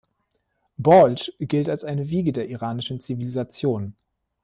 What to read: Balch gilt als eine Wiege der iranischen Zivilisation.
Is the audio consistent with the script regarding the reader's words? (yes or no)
yes